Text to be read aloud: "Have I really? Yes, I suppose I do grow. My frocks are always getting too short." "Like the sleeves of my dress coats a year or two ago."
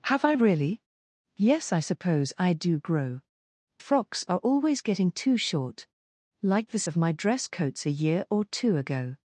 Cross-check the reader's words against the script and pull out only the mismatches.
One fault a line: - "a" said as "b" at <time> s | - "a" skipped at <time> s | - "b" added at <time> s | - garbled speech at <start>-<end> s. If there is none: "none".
- "My" skipped at 3.2 s
- "sleeves" skipped at 6.8 s